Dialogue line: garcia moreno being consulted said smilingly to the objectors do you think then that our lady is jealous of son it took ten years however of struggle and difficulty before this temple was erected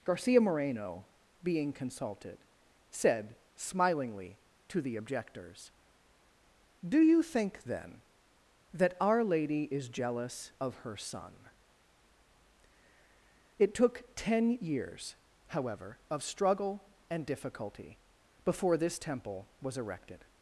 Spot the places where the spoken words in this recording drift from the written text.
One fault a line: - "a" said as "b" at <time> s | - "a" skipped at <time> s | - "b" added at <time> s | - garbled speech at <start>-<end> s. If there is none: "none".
- "her" added at 10.8 s